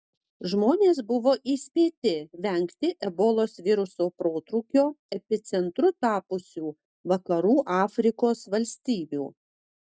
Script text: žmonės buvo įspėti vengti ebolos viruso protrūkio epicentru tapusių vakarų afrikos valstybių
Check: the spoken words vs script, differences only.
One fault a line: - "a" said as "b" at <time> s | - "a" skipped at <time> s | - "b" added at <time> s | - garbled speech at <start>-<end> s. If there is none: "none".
none